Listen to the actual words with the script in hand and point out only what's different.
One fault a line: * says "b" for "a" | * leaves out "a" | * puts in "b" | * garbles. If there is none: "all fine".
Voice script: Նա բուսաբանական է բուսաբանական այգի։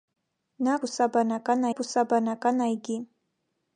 all fine